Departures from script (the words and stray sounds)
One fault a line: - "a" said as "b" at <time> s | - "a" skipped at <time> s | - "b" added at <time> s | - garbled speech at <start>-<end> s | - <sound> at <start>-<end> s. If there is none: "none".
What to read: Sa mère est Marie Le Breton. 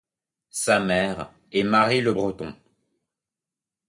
none